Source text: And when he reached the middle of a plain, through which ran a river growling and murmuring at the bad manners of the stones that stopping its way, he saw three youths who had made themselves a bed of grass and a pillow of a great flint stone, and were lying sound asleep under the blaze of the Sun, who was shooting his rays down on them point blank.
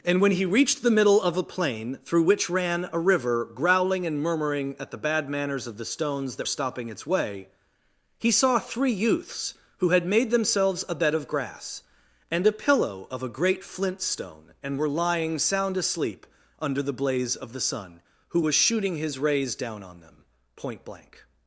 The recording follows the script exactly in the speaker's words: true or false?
true